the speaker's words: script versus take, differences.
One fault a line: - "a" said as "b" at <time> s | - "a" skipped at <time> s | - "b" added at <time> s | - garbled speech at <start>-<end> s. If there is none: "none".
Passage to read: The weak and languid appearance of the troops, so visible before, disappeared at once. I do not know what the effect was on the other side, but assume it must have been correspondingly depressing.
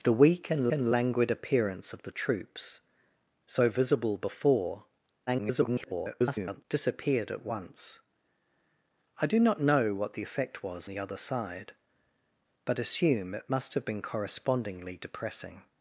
- "and" added at 0.7 s
- garbled speech at 5.3-6.6 s
- "on" skipped at 10.9 s